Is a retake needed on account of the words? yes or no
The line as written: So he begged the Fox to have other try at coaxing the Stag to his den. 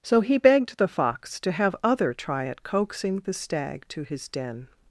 no